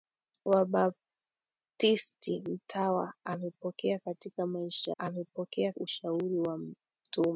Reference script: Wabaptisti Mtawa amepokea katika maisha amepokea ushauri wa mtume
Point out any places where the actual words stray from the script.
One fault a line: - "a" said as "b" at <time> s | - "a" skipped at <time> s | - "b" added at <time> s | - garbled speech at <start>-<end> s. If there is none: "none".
none